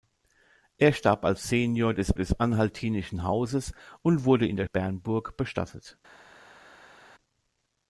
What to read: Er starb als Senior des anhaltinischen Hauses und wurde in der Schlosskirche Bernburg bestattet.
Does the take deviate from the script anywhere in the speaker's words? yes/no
yes